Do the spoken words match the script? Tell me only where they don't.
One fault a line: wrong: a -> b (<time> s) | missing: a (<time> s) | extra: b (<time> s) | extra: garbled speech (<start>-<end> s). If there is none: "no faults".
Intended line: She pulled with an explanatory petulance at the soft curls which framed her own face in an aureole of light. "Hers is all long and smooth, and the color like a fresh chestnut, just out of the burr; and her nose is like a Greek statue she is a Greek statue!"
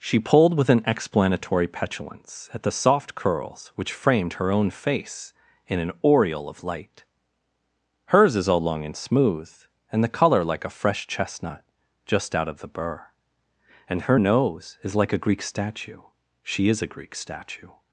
no faults